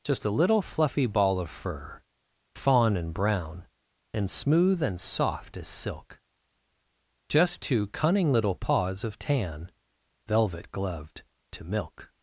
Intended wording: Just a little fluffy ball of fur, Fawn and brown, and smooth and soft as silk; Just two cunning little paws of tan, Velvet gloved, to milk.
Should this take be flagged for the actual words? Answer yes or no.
no